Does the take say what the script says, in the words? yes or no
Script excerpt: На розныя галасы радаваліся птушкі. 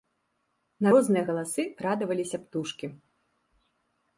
yes